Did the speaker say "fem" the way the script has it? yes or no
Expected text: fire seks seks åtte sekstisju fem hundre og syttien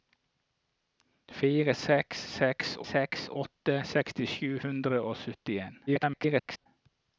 no